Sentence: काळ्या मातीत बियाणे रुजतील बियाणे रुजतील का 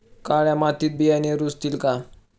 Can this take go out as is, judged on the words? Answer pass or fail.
fail